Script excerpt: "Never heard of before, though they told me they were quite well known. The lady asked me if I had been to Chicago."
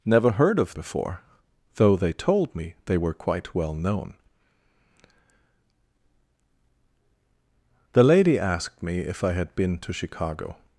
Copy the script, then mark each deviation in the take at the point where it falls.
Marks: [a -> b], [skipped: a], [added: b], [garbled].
"Never heard of before, though they told me they were quite well known. The lady asked me if I had been to Chicago."